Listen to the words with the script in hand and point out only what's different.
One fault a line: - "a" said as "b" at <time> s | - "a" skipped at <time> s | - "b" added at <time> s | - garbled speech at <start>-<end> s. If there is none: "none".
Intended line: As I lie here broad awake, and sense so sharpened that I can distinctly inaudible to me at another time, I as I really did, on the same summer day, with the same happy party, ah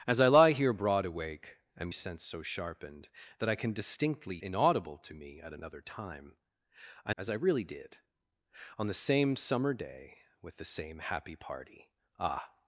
none